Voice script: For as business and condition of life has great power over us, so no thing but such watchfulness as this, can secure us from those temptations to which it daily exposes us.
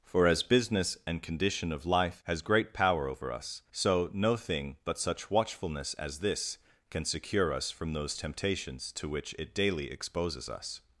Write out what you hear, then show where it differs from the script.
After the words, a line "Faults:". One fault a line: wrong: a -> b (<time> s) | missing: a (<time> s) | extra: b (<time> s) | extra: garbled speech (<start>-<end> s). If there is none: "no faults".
For as business and condition of life has great power over us, so no thing but such watchfulness as this, can secure us from those temptations to which it daily exposes us.
Faults:
no faults